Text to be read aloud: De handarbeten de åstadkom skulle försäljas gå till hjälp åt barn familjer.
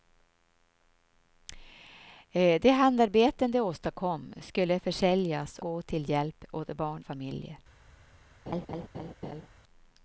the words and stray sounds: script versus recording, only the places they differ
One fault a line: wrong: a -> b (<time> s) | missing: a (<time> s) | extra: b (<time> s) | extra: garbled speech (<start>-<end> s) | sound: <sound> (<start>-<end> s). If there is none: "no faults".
sound: laugh (8.5-9.5 s)